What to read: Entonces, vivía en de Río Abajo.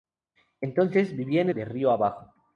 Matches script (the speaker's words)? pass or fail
pass